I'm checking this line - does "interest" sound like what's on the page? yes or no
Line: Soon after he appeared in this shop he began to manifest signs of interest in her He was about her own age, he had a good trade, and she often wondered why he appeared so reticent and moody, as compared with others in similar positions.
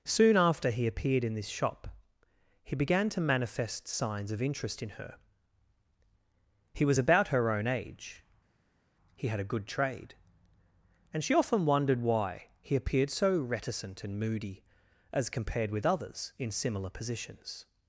yes